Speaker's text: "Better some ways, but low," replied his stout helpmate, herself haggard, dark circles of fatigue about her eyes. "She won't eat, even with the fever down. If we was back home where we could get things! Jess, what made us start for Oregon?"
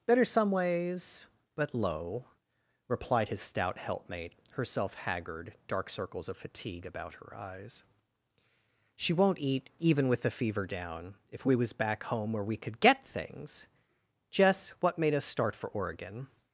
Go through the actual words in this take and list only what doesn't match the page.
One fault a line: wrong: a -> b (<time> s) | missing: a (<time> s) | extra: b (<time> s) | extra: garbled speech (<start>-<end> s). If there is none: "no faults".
no faults